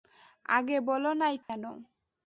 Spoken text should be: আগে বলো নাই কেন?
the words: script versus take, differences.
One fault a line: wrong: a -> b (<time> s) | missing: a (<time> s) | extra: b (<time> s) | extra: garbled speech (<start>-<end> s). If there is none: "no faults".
no faults